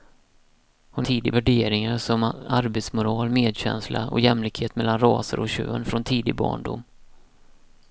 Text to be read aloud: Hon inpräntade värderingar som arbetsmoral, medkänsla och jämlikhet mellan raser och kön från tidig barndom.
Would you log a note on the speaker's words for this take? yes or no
yes